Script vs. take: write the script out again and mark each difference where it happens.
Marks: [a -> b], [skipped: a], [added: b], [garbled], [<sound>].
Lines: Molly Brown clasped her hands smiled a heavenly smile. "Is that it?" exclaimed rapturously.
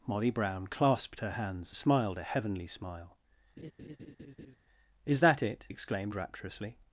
Molly Brown clasped her hands smiled a heavenly smile. [laugh] "Is that it?" exclaimed rapturously.